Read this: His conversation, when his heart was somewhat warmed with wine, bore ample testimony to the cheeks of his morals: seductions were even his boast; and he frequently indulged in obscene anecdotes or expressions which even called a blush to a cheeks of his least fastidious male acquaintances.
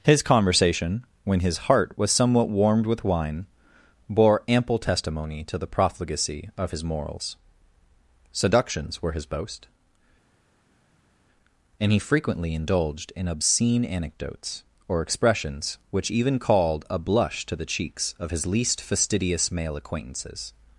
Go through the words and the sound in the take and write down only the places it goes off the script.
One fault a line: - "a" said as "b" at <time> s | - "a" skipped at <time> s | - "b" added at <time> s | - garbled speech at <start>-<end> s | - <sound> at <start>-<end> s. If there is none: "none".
- "cheeks" said as "profligacy" at 5.7 s
- "even" skipped at 9.1 s
- "a" said as "the" at 17.6 s